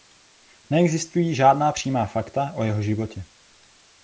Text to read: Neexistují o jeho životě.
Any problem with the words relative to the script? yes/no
yes